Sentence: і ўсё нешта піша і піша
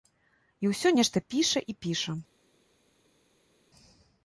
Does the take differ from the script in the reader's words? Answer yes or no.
no